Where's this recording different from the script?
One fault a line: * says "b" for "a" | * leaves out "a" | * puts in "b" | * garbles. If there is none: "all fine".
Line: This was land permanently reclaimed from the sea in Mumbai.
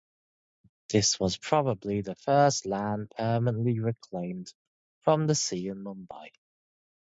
* puts in "probably the first"